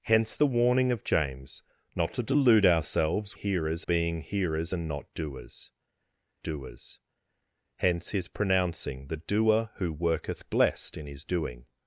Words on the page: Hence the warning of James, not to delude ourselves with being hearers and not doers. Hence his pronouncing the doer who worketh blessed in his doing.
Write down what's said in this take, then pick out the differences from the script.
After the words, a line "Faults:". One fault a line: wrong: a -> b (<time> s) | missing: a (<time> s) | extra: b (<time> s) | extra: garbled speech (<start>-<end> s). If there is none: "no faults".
Hence the warning of James, not to delude ourselves hearers being hearers and not doers doers. Hence his pronouncing the doer who worketh blessed in his doing.
Faults:
wrong: with -> hearers (3.3 s)
extra: doers (6.4 s)